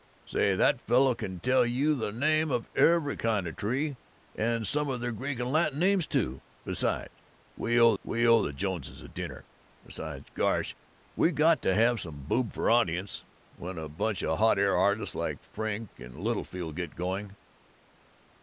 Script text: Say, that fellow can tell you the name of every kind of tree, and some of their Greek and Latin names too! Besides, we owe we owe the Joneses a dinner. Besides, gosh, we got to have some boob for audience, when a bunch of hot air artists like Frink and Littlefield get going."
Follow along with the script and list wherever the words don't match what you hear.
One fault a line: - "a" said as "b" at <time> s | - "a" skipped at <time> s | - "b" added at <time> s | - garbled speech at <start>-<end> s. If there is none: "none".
none